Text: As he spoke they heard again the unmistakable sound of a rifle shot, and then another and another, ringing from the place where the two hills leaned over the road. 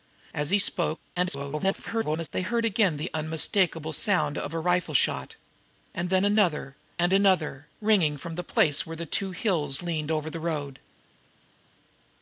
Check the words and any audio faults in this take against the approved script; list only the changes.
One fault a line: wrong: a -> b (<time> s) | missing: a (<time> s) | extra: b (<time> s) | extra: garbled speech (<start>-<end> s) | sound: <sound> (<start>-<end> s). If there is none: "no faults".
extra: garbled speech (1.2-2.3 s)